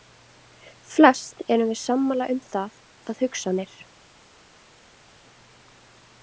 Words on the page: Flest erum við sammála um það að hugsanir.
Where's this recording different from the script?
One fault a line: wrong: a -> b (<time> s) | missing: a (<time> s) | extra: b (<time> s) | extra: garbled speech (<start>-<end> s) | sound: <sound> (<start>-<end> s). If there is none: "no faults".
no faults